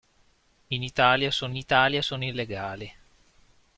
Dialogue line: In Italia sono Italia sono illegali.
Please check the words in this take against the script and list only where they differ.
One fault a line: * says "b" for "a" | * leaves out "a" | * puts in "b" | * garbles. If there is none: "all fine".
all fine